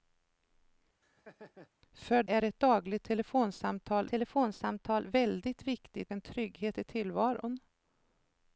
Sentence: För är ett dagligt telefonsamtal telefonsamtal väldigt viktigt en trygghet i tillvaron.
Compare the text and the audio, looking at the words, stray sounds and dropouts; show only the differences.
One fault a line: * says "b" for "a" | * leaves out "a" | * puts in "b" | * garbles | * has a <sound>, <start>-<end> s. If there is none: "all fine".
* has a laugh, 1.0-1.7 s